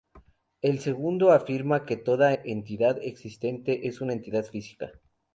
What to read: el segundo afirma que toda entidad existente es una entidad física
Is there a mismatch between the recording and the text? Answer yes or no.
no